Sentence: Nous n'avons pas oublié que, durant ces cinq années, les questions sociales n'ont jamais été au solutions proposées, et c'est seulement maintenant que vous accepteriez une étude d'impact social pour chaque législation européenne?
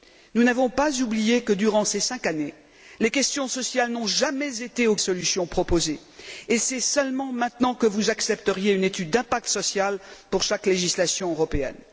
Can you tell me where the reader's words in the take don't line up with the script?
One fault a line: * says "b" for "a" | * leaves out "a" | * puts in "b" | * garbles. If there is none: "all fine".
all fine